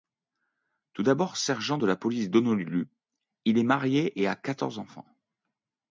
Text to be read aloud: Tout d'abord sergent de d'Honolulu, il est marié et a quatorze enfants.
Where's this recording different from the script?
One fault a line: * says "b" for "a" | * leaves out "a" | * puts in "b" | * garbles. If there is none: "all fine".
* puts in "la police"